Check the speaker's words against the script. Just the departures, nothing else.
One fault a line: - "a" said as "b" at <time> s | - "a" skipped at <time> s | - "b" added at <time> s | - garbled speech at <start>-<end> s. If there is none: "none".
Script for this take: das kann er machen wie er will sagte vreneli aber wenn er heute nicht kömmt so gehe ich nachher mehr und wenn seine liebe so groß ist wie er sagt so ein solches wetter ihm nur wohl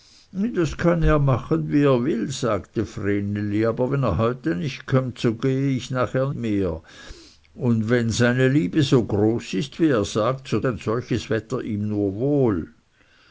none